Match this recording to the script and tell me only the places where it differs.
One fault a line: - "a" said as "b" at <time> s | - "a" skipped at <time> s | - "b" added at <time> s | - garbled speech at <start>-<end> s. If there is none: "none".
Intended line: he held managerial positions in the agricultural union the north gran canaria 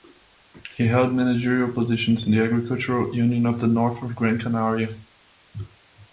- "of" added at 3.5 s
- "of" added at 4.0 s